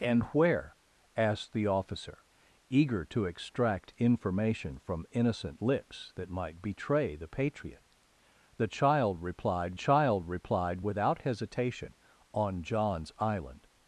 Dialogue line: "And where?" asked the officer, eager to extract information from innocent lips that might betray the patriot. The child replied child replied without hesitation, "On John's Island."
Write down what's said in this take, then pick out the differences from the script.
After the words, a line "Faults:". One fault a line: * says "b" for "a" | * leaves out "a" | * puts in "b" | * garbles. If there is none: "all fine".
"And where?" asked the officer, eager to extract information from innocent lips that might betray the patriot. The child replied child replied without hesitation, "On John's Island."
Faults:
all fine